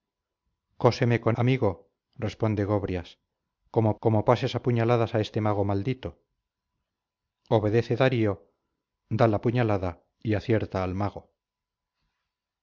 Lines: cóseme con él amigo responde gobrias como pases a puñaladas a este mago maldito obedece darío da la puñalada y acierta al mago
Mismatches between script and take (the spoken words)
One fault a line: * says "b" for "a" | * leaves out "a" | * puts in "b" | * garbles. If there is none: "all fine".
* leaves out "él"
* puts in "como"